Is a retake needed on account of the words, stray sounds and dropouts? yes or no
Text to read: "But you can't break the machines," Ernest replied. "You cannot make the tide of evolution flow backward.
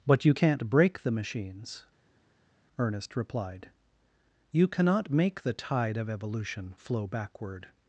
no